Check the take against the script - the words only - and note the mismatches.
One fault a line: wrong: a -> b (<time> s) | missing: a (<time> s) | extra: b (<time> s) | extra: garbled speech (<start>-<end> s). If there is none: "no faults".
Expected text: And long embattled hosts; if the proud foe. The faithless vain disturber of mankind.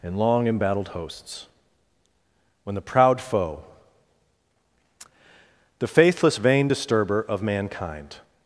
wrong: if -> when (2.6 s)